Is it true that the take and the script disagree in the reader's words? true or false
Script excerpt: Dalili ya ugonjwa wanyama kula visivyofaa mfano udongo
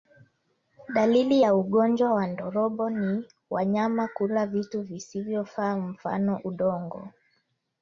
true